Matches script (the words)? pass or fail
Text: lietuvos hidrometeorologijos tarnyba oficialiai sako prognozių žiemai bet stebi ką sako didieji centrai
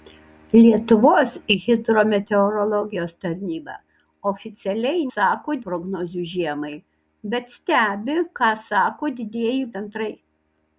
pass